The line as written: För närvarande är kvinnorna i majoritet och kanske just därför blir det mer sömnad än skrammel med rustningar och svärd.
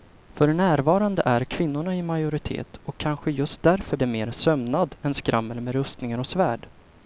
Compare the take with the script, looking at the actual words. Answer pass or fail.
fail